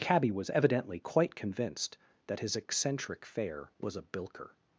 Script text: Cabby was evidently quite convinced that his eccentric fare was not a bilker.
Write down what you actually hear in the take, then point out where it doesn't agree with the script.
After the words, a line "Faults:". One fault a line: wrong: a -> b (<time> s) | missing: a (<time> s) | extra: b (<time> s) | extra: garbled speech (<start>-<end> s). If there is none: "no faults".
Cabby was evidently quite convinced that his eccentric fare was a bilker.
Faults:
missing: not (4.0 s)